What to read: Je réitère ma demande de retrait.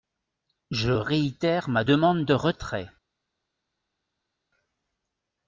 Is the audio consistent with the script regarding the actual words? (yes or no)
yes